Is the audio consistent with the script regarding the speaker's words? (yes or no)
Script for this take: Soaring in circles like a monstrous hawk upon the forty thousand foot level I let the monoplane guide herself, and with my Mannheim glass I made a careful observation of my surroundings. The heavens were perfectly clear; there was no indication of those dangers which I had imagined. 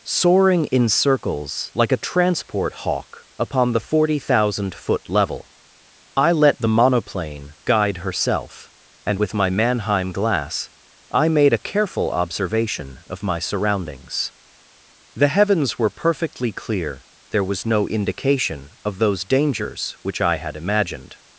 no